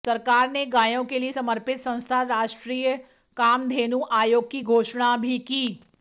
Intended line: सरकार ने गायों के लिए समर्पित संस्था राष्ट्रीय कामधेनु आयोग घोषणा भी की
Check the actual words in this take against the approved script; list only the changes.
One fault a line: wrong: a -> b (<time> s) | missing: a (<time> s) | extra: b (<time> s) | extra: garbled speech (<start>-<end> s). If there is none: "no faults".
extra: की (4.5 s)